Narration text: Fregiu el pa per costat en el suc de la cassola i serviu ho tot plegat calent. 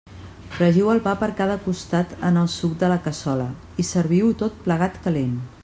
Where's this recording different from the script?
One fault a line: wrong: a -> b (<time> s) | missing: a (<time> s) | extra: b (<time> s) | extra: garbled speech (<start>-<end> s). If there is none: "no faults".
extra: cada (1.4 s)